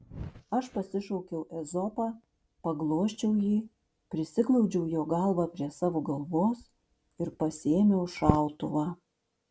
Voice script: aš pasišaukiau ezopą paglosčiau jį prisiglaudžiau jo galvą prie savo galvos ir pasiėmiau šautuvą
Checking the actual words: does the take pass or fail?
pass